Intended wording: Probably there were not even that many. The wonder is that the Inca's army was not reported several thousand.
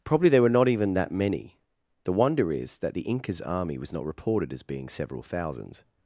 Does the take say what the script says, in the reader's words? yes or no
no